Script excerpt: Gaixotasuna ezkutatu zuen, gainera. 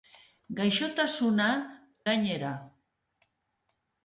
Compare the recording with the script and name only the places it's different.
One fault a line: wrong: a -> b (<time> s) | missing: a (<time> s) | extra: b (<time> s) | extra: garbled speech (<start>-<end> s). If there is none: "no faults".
missing: ezkutatu zuen (1.5 s)